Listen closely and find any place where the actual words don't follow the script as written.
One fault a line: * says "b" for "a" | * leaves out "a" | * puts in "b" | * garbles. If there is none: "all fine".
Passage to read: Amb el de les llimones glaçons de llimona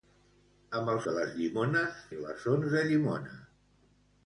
all fine